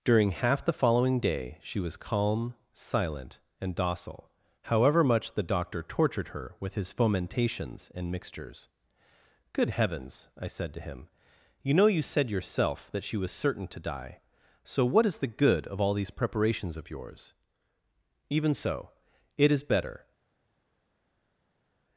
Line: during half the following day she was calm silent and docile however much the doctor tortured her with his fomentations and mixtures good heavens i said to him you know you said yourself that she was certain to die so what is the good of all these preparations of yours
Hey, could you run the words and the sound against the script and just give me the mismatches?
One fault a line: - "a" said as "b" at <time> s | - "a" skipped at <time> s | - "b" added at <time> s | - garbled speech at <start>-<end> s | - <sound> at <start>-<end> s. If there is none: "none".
- "even so it is better" added at 18.3 s